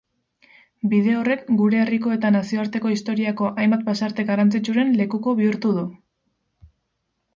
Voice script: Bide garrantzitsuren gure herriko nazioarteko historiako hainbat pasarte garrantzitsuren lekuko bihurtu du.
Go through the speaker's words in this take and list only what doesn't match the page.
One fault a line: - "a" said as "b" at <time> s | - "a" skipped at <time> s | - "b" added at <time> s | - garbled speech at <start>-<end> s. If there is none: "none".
- "garrantzitsuren" said as "horrek" at 1.2 s
- "eta" added at 2.1 s